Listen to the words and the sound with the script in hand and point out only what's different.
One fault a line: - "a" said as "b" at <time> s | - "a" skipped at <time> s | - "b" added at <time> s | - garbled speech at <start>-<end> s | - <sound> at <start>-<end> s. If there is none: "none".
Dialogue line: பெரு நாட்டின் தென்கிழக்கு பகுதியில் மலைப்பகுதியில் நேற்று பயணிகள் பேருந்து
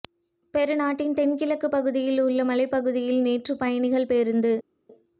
- "உள்ள" added at 2.2 s